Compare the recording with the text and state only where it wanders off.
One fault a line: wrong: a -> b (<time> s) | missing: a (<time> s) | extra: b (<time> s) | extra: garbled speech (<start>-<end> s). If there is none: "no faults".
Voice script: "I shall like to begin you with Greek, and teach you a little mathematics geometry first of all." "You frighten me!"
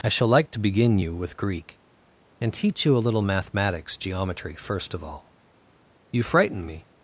no faults